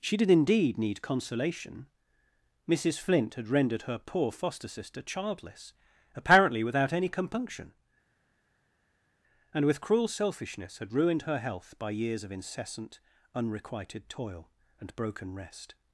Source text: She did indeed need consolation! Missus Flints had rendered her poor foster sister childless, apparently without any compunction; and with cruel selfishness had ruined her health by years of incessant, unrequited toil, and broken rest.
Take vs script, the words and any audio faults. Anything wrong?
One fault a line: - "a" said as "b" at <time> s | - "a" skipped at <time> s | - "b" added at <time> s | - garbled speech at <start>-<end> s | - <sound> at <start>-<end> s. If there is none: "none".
- "Flints" said as "Flint" at 3.0 s